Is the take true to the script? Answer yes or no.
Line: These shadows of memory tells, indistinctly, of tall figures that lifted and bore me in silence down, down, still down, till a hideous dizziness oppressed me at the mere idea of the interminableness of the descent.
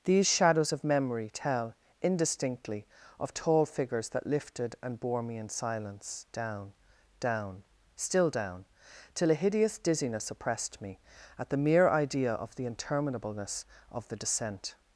no